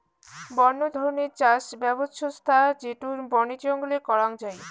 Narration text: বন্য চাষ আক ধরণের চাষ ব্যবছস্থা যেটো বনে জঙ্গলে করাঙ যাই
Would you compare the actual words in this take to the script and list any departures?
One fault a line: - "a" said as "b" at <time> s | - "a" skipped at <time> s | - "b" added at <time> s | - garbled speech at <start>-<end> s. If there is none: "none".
- "চাষ আক" skipped at 0.8 s